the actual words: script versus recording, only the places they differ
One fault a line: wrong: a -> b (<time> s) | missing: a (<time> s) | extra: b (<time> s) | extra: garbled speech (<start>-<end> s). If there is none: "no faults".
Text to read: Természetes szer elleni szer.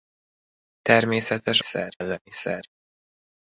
no faults